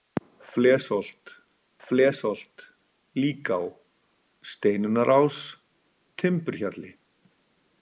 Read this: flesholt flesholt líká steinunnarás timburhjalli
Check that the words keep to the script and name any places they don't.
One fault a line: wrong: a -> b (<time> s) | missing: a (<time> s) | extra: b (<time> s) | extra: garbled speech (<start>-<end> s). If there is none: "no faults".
no faults